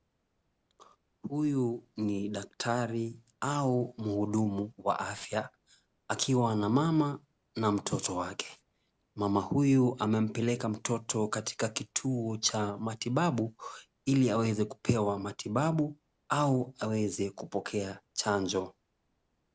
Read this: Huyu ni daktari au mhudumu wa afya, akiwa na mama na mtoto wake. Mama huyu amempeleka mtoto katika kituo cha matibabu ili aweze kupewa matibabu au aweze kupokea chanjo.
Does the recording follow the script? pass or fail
pass